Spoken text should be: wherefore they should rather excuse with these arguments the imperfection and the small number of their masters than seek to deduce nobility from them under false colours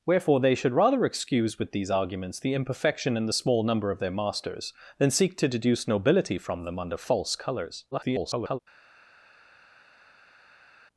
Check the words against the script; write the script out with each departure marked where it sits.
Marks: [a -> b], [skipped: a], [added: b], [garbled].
wherefore they should rather excuse with these arguments the imperfection and the small number of their masters than seek to deduce nobility from them under false colours [garbled]